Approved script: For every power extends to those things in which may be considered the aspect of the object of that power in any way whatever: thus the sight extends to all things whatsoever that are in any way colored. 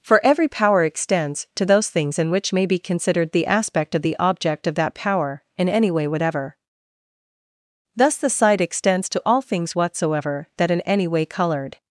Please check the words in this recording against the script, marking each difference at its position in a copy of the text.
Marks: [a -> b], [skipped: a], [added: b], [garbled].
For every power extends to those things in which may be considered the aspect of the object of that power in any way whatever: thus the sight extends to all things whatsoever that [skipped: are] in any way colored.